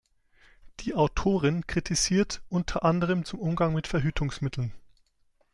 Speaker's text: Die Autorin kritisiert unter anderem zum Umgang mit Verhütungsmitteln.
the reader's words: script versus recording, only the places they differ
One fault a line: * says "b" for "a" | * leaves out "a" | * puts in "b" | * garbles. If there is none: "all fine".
all fine